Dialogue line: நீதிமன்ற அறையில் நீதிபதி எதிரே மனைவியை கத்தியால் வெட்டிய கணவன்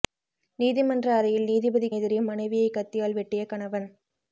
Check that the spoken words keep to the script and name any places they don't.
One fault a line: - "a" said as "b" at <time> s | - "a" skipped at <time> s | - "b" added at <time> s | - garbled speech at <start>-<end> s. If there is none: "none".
none